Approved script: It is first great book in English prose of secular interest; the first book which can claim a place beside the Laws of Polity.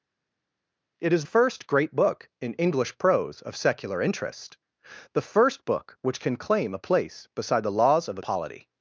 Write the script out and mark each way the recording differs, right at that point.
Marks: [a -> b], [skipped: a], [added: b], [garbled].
It is first great book in English prose of secular interest; the first book which can claim a place beside the Laws of Polity.